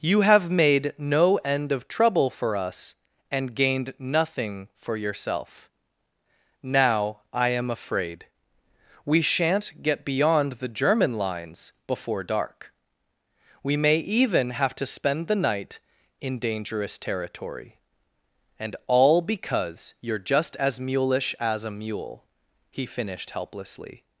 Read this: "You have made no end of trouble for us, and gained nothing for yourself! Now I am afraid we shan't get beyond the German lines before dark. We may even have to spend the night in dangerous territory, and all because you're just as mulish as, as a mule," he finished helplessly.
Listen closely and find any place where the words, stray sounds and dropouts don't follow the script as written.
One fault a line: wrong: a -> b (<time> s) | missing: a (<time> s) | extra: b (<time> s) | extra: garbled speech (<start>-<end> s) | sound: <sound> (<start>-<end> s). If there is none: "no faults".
missing: as (21.6 s)